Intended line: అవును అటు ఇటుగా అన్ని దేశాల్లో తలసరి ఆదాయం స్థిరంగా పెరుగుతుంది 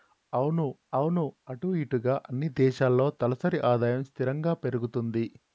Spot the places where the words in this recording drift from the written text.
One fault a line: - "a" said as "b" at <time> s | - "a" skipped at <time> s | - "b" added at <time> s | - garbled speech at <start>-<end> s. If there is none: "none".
- "అవును" added at 0.9 s